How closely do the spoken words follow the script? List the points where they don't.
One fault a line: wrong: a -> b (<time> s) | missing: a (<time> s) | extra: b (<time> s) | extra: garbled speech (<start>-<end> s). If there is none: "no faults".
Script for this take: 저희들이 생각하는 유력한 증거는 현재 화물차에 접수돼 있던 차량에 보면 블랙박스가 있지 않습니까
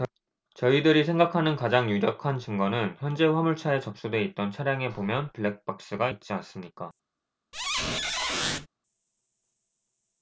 extra: 가장 (1.6 s)